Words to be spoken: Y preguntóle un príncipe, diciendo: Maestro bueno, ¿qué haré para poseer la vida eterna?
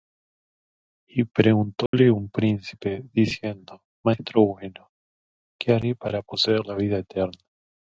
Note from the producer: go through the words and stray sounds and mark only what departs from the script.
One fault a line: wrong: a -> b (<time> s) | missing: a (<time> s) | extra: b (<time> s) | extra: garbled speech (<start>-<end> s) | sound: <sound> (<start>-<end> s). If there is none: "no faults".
sound: dropout (1.9-1.9 s)